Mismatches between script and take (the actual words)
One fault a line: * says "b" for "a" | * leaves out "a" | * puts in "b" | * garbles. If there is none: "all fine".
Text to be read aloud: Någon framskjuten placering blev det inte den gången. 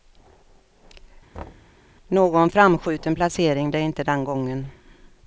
* leaves out "blev"